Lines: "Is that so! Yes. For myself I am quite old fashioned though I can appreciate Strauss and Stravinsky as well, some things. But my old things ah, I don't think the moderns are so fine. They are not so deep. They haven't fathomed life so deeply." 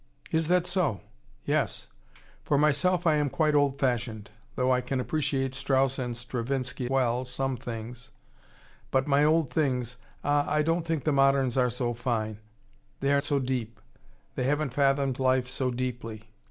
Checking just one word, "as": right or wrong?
wrong